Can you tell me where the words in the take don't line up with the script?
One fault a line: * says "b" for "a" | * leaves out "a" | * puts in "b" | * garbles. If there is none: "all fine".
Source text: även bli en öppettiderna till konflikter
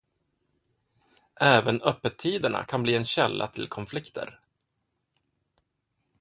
* puts in "öppettiderna kan"
* says "källa" for "öppettiderna"